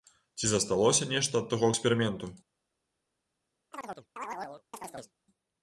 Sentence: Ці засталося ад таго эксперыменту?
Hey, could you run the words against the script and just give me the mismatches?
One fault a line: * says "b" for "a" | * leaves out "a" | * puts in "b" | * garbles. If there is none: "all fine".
* puts in "нешта"